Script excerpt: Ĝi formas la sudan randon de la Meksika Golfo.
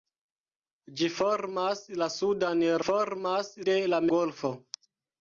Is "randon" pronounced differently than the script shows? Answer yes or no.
yes